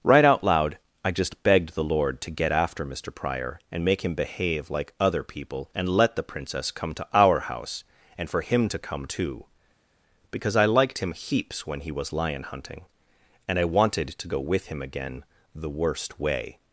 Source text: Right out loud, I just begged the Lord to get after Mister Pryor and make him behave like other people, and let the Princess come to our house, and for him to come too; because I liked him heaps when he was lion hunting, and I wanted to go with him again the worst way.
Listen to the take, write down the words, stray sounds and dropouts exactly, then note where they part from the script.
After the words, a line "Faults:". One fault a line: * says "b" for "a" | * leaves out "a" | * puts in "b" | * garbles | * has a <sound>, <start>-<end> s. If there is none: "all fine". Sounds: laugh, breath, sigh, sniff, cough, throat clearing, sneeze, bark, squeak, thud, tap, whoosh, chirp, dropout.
Right out loud, I just begged the Lord to get after Mister Pryor and make him behave like other people, and let the Princess come to our house, and for him to come too; because I liked him heaps when he was lion hunting, and I wanted to go with him again the worst way.
Faults:
all fine